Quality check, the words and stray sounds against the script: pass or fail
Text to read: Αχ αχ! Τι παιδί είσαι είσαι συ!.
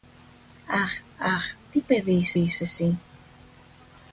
pass